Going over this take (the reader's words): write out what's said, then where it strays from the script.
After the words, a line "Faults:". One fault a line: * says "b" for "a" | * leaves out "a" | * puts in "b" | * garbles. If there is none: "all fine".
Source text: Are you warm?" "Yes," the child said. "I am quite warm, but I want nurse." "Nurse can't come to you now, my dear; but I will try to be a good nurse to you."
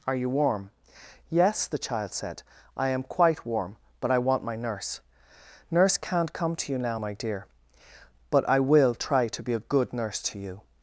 Are you warm?" "Yes," the child said. "I am quite warm, but I want my nurse." "Nurse can't come to you now, my dear; but I will try to be a good nurse to you."
Faults:
* puts in "my"